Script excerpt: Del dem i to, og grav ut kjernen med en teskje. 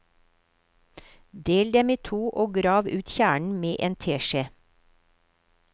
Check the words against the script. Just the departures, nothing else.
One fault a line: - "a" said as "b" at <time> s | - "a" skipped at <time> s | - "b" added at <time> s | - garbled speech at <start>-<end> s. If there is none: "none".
none